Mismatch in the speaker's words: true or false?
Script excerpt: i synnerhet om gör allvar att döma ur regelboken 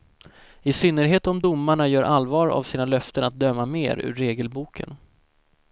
true